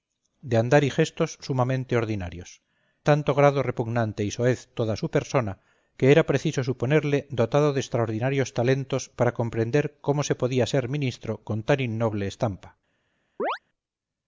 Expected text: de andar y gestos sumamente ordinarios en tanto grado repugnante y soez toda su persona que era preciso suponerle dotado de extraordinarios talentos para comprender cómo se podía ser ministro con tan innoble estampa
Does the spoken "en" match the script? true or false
false